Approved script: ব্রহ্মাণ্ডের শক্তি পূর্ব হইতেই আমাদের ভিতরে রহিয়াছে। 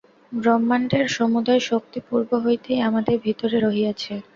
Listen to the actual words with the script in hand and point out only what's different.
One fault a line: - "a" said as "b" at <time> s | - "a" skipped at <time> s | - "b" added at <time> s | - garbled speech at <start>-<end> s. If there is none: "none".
- "সমুদয়" added at 1.2 s